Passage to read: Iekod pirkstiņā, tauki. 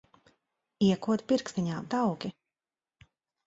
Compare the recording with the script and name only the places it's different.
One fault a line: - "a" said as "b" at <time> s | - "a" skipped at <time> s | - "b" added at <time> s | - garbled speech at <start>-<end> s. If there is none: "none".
none